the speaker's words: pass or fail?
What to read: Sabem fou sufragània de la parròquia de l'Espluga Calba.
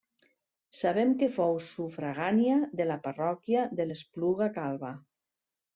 fail